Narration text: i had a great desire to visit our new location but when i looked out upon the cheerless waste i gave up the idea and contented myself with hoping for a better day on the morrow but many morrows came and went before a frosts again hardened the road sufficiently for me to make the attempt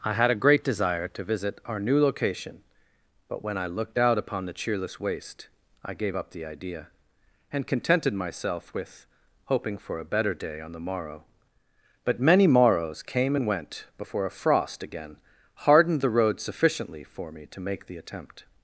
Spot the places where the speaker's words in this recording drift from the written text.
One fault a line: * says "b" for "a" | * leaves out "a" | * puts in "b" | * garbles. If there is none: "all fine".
* says "frost" for "frosts"